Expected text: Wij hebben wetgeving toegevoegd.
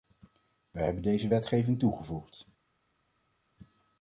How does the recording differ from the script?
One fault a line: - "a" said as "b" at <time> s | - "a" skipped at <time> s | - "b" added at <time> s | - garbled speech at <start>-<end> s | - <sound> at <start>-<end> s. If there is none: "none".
- "deze" added at 1.0 s